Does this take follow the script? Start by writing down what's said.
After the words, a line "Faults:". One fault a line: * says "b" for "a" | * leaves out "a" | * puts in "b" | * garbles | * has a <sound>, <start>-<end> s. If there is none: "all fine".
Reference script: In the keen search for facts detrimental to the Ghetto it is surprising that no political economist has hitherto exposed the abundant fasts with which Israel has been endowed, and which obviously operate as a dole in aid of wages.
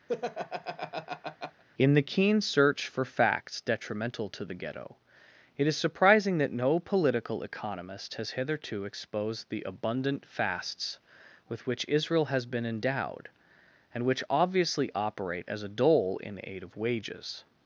In the keen search for facts detrimental to the Ghetto it is surprising that no political economist has hitherto exposed the abundant fasts with which Israel has been endowed, and which obviously operate as a dole in aid of wages.
Faults:
* has a laugh, 0.1-1.6 s